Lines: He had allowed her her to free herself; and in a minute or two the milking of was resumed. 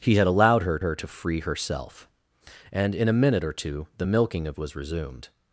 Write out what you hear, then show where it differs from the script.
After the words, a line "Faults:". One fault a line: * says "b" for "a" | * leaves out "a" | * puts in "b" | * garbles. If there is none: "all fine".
He had allowed her her to free herself; and in a minute or two the milking of was resumed.
Faults:
all fine